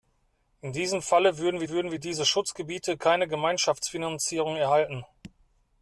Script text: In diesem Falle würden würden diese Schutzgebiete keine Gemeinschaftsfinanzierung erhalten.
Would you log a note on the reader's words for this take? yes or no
no